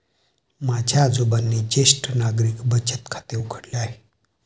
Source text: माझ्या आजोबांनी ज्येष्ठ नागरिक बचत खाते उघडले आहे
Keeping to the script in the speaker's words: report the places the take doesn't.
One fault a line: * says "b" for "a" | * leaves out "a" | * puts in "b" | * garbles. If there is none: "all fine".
all fine